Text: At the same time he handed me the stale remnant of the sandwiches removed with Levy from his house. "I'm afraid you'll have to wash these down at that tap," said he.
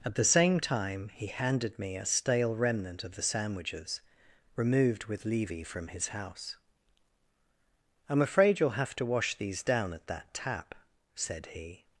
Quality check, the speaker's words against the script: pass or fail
fail